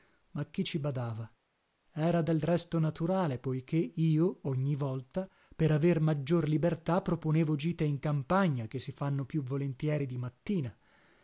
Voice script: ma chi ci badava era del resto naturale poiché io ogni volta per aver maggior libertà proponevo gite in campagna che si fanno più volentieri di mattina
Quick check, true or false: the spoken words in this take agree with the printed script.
true